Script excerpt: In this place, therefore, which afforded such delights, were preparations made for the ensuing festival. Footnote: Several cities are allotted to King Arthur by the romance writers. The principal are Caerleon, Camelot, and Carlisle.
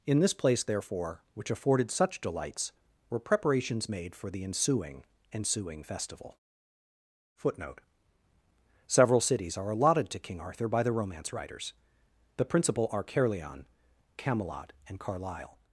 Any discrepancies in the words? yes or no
yes